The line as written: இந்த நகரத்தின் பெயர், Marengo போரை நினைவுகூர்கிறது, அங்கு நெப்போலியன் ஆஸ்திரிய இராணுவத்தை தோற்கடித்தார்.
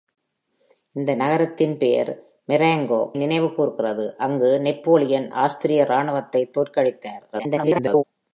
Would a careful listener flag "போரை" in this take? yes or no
yes